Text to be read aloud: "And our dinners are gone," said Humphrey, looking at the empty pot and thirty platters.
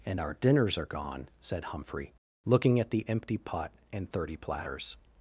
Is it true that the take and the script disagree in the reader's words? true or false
false